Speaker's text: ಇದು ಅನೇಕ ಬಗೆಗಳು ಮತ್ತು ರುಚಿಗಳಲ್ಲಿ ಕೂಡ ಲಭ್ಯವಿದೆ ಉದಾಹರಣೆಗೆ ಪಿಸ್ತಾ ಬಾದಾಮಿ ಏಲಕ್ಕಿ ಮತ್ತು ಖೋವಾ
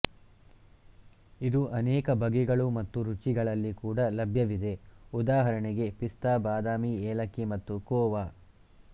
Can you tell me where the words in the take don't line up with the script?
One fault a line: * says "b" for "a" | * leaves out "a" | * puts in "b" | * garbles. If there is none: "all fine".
all fine